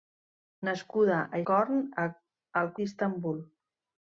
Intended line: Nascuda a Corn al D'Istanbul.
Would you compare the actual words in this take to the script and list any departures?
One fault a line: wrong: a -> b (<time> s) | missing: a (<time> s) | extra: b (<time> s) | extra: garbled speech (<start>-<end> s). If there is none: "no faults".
no faults